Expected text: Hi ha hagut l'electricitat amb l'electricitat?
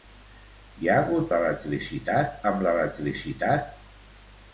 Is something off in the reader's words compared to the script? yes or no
no